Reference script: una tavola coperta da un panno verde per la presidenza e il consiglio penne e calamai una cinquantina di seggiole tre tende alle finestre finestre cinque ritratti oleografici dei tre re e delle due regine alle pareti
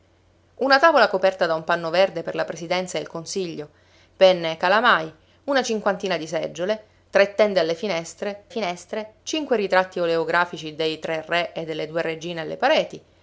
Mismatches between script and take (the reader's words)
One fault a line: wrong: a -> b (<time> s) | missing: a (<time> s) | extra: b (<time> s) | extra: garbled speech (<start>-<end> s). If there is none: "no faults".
no faults